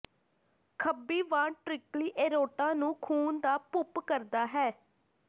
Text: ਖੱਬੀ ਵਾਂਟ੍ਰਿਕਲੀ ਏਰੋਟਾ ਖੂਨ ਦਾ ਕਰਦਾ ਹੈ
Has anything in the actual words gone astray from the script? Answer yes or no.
yes